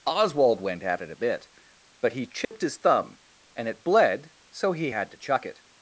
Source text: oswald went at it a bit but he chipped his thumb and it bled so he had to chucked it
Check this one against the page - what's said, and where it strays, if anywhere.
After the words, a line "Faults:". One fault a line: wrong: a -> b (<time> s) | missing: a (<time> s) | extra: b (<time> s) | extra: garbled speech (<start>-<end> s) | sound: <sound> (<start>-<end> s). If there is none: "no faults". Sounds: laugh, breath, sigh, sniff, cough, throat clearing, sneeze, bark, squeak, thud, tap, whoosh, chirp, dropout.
oswald went at it a bit but he chipped his thumb and it bled so he had to chuck it
Faults:
sound: dropout (2.4-2.5 s)
wrong: chucked -> chuck (5.2 s)